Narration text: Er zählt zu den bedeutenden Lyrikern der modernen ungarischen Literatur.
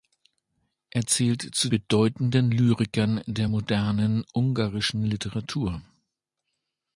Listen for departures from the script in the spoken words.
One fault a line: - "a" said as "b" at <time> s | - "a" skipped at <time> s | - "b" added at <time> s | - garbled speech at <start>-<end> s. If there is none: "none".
- "den" skipped at 1.7 s